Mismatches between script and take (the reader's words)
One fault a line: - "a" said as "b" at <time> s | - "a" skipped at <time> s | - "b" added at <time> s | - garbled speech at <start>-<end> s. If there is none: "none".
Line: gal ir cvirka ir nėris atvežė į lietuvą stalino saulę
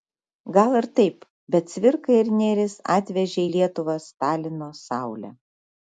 - "taip bet" added at 1.0 s